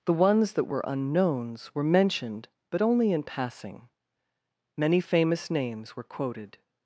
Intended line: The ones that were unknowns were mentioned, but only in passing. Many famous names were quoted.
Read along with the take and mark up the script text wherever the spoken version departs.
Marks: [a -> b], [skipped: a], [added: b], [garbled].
The ones that were unknowns were mentioned, but only in passing. Many famous names were quoted.